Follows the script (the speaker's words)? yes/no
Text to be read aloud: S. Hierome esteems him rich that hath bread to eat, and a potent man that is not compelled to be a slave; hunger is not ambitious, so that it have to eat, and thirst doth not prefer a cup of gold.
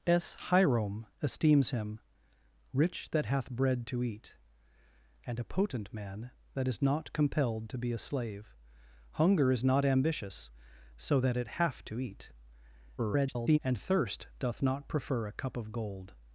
no